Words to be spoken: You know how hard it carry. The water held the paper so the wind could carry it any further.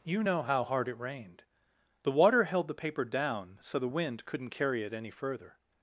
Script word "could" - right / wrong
wrong